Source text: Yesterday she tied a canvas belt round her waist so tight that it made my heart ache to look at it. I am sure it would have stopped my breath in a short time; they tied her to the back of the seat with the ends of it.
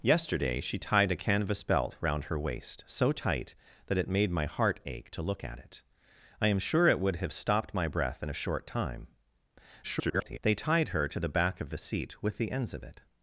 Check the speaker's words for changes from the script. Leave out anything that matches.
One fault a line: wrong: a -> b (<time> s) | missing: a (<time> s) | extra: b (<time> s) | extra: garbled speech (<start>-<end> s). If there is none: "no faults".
extra: garbled speech (9.8-10.4 s)